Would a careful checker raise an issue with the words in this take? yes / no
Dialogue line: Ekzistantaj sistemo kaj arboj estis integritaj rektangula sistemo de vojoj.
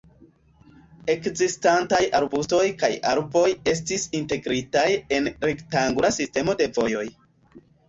yes